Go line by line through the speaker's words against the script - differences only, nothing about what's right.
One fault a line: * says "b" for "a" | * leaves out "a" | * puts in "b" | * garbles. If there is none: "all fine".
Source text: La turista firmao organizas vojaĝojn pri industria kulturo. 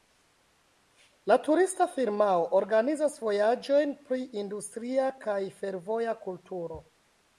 * puts in "kaj fervoja"